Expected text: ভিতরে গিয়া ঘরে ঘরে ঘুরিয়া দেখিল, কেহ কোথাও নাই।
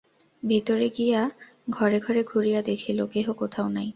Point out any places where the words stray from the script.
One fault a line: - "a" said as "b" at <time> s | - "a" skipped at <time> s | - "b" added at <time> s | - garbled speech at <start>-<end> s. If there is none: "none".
none